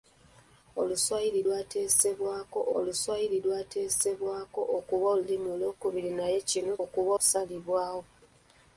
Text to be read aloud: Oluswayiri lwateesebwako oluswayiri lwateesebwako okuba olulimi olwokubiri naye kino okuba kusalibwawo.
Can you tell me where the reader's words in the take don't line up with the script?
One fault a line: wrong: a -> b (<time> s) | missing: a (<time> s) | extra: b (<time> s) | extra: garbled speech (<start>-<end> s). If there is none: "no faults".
no faults